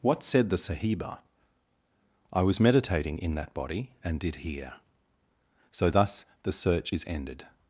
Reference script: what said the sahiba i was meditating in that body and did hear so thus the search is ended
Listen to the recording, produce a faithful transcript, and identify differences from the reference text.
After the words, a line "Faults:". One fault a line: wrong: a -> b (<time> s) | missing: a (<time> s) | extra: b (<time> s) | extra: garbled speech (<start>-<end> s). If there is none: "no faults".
what said the sahiba i was meditating in that body and did hear so thus the search is ended
Faults:
no faults